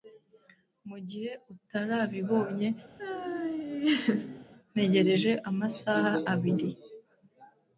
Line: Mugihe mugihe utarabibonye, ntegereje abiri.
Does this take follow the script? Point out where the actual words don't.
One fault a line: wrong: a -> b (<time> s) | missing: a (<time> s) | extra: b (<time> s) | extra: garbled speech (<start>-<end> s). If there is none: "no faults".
missing: mugihe (1.3 s)
extra: amasaha (5.5 s)